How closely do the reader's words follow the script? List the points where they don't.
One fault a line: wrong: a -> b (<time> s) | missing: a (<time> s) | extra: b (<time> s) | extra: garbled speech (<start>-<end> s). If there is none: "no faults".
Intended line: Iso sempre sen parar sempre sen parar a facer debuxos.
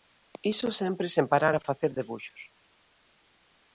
missing: sempre sen parar (1.6 s)